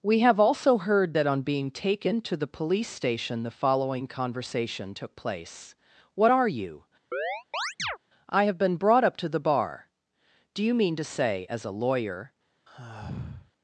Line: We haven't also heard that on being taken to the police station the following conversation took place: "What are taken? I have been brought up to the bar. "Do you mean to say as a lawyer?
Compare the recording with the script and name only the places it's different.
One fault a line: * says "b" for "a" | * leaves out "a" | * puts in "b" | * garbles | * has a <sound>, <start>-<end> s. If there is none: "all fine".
* says "have" for "haven't"
* says "you" for "taken"
* has a chirp, 7.1-8.0 s
* has a sigh, 12.7-13.5 s